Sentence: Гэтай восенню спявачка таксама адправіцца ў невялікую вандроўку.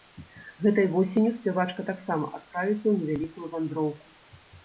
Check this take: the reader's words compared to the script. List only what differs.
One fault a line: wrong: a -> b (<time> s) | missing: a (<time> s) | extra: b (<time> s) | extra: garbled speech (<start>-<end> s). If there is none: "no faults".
no faults